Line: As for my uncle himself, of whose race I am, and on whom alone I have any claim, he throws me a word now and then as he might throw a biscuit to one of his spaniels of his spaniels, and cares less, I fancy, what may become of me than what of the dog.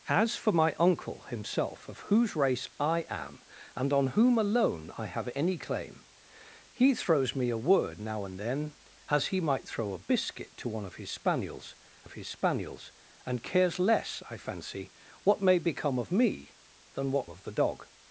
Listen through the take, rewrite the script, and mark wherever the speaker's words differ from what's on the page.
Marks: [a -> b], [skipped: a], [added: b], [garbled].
As for my uncle himself, of whose race I am, and on whom alone I have any claim, he throws me a word now and then as he might throw a biscuit to one of his spaniels of his spaniels, and cares less, I fancy, what may become of me than what of the dog.